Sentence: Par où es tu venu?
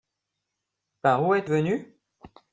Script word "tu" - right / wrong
wrong